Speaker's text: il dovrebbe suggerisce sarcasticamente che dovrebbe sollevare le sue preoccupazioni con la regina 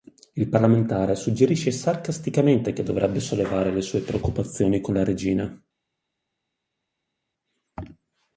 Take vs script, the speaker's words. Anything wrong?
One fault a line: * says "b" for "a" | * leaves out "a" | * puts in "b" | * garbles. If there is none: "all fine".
* says "parlamentare" for "dovrebbe"